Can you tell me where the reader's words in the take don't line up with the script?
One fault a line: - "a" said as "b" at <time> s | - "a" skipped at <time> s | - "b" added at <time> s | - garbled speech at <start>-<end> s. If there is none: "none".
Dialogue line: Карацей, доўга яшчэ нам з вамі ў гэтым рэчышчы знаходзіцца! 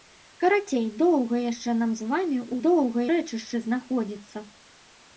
- "гэтым" said as "доўга" at 2.7 s